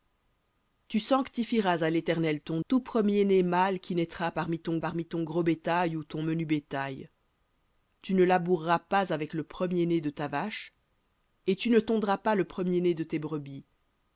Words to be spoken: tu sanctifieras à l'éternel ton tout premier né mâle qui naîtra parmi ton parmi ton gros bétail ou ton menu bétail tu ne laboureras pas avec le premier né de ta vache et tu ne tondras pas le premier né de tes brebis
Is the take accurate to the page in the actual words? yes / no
yes